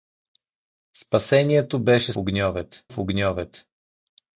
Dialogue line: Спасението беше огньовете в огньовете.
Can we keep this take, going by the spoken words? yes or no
yes